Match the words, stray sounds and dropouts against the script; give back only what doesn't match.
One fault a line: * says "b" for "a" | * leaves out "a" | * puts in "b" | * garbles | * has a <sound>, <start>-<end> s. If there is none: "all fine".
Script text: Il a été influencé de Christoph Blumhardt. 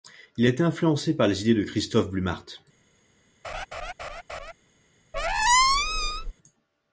* puts in "par les idées"
* has a laugh, 3.4-4.5 s
* has a squeak, 5.1-6.3 s